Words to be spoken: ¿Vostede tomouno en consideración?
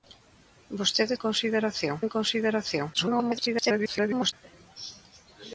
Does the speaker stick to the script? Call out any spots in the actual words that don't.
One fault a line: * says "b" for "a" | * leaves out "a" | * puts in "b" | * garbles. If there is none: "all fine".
* says "consideración" for "tomouno"
* garbles